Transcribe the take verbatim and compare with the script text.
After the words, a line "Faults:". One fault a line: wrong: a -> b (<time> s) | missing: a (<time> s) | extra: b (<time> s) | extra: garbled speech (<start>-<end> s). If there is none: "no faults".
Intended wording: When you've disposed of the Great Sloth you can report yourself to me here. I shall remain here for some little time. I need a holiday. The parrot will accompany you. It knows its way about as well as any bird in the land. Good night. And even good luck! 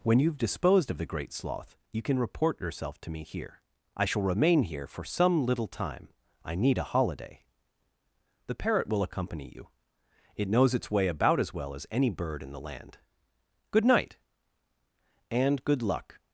When you've disposed of the Great Sloth you can report yourself to me here. I shall remain here for some little time. I need a holiday. The parrot will accompany you. It knows its way about as well as any bird in the land. Good night. And good luck!
Faults:
missing: even (15.6 s)